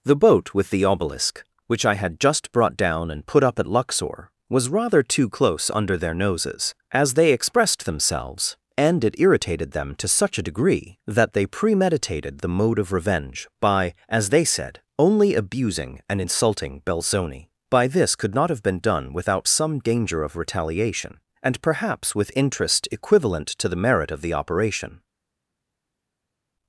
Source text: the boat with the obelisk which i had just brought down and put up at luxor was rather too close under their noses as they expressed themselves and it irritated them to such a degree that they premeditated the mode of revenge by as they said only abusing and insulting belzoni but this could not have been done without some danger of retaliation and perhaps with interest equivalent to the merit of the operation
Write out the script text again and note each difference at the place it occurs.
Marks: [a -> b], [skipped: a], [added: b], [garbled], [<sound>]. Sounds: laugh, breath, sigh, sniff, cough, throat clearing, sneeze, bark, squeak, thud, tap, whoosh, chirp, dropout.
the boat with the obelisk which i had just brought down and put up at luxor was rather too close under their noses as they expressed themselves and it irritated them to such a degree that they premeditated the mode of revenge by as they said only abusing and insulting belzoni [but -> by] this could not have been done without some danger of retaliation and perhaps with interest equivalent to the merit of the operation